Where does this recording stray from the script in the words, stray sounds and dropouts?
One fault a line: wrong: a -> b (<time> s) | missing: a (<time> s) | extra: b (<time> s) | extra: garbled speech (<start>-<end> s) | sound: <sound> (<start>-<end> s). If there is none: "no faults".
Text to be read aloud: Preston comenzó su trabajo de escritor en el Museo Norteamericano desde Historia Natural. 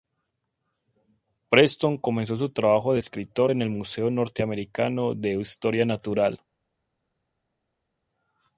wrong: desde -> de (5.1 s)